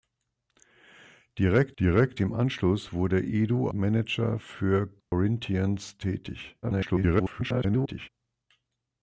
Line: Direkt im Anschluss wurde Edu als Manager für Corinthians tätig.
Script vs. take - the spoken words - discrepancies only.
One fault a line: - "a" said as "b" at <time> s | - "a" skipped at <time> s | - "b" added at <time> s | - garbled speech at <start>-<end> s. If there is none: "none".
- "direkt" added at 1.8 s
- "als" skipped at 3.7 s
- garbled speech at 6.6-8.1 s